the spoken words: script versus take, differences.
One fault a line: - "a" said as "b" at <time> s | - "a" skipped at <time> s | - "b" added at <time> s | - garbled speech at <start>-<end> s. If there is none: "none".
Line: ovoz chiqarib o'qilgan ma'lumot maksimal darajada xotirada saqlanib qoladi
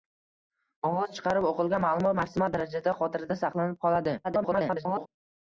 - garbled speech at 4.2-5.1 s